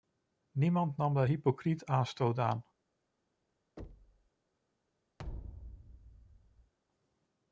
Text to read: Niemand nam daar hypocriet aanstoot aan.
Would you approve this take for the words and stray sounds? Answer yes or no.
no